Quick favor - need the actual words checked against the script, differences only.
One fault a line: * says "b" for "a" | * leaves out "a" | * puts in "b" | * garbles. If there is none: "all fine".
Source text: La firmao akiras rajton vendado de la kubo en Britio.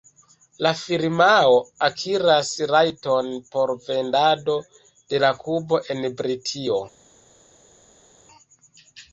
* puts in "por"